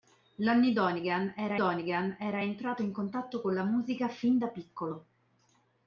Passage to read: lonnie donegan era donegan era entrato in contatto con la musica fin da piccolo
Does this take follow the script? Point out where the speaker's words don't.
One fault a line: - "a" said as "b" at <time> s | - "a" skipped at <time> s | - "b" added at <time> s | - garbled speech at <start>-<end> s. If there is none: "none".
none